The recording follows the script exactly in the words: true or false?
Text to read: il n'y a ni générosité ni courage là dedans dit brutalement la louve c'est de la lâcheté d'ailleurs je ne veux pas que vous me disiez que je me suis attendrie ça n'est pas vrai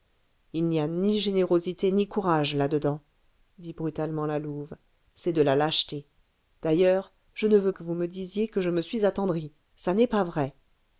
false